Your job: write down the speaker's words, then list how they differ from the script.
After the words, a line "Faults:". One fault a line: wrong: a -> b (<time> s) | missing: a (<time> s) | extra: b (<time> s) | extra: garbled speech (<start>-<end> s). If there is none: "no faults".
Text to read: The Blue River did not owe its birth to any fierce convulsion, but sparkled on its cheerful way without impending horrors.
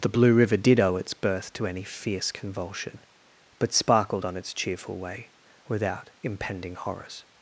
The Blue River did owe its birth to any fierce convulsion, but sparkled on its cheerful way without impending horrors.
Faults:
missing: not (0.8 s)